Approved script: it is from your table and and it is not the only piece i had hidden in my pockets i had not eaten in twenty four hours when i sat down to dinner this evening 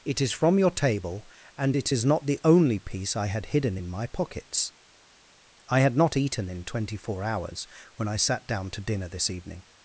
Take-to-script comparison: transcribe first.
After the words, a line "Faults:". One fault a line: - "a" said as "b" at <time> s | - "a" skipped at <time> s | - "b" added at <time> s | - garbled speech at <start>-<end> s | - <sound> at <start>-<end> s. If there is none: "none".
it is from your table and it is not the only piece i had hidden in my pockets i had not eaten in twenty four hours when i sat down to dinner this evening
Faults:
- "and" skipped at 1.8 s